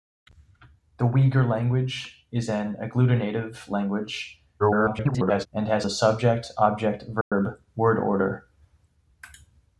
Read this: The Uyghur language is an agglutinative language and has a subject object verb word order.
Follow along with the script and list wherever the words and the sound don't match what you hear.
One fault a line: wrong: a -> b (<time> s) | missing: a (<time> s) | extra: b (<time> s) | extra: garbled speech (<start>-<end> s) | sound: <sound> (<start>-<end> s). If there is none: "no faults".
extra: garbled speech (4.6-5.5 s)
sound: dropout (7.2-7.3 s)